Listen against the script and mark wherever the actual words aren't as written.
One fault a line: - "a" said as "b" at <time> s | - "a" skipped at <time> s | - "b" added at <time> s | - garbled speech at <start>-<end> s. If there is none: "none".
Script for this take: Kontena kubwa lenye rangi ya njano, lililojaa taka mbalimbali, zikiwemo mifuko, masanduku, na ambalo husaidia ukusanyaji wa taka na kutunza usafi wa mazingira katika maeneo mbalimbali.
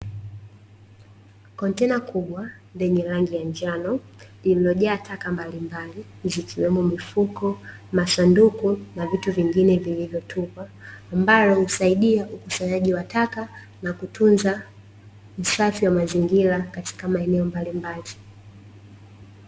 - "vitu vingine vilivyotupwa" added at 9.1 s